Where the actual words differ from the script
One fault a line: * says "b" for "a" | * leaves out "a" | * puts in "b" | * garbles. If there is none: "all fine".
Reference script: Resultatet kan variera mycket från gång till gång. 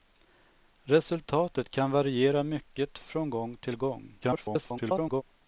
* garbles